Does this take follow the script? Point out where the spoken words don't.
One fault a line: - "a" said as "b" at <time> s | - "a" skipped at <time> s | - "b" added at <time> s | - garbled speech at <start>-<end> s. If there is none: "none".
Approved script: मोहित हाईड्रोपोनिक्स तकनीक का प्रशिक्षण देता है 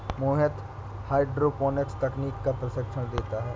none